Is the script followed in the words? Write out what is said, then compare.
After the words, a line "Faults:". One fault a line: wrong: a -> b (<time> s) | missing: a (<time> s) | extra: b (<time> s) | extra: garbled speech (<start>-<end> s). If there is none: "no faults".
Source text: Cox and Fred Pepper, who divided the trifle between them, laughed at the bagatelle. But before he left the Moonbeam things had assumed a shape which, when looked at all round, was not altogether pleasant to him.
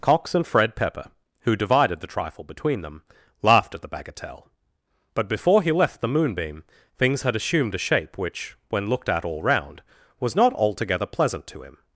Cox and Fred Pepper, who divided the trifle between them, laughed at the bagatelle. But before he left the Moonbeam things had assumed a shape which, when looked at all round, was not altogether pleasant to him.
Faults:
no faults